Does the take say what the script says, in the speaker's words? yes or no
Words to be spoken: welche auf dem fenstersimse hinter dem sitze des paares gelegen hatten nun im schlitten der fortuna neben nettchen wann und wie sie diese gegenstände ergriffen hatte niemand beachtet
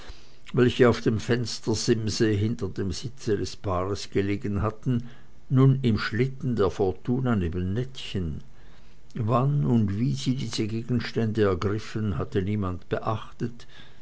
yes